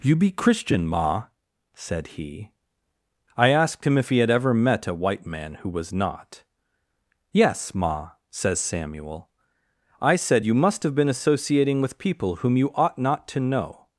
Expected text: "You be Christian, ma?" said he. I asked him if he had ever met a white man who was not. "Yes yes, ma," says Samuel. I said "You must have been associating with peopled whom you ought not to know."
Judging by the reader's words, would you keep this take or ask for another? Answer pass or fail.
fail